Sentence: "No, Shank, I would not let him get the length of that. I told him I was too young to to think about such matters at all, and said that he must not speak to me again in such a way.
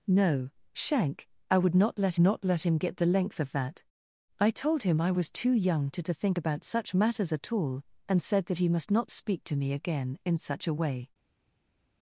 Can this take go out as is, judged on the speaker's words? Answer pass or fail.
fail